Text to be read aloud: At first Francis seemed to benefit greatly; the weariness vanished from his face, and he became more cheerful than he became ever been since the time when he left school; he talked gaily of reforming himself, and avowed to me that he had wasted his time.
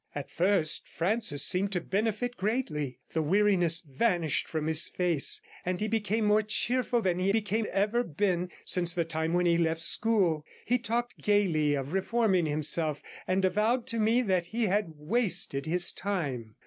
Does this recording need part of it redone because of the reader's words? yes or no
no